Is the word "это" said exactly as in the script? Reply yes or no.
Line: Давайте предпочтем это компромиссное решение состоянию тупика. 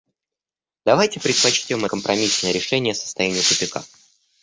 no